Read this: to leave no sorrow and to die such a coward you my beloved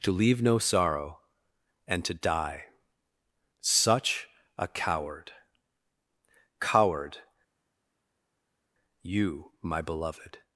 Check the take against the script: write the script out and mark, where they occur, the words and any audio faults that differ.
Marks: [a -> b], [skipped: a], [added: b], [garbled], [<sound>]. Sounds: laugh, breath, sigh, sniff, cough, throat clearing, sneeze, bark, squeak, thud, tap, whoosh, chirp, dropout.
to leave no sorrow and to die such a coward [added: coward] you my beloved